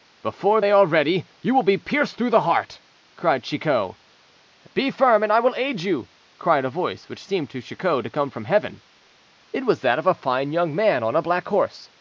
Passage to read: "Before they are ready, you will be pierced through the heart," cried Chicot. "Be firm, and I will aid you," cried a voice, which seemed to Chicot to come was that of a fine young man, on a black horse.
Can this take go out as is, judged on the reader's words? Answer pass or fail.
fail